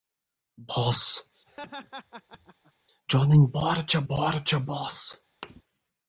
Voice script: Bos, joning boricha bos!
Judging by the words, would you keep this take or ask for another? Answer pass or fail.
fail